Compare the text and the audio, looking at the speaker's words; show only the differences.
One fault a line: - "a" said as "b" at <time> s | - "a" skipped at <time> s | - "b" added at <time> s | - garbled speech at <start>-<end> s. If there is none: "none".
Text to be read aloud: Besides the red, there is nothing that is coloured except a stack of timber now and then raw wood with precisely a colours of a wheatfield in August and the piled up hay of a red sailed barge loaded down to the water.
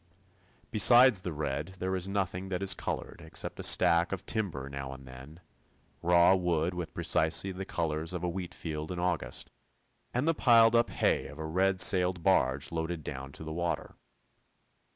- "a" said as "the" at 7.5 s